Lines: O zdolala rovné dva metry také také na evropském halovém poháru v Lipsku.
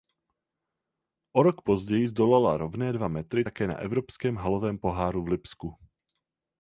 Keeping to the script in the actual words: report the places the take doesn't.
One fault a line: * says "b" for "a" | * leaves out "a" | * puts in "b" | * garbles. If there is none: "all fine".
* puts in "rok později"
* leaves out "také"